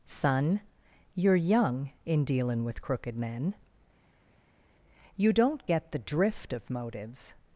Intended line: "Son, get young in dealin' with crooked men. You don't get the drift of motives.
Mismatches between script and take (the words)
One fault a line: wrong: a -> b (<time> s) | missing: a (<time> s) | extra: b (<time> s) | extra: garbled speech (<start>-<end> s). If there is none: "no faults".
wrong: get -> you're (1.1 s)